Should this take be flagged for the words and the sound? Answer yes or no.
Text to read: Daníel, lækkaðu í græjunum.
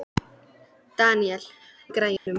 yes